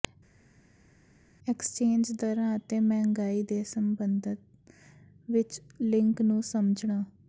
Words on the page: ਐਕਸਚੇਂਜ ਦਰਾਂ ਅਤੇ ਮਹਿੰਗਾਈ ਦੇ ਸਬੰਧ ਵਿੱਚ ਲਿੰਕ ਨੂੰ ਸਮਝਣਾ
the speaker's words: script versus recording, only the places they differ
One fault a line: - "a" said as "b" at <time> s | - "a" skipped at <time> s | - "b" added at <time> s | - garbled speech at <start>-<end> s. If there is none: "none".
none